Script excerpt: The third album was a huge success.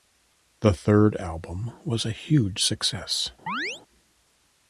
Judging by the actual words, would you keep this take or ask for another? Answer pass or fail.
pass